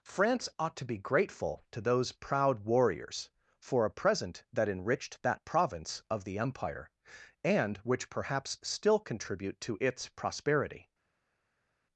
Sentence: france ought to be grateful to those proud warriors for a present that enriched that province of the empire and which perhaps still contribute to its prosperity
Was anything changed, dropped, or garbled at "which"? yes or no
no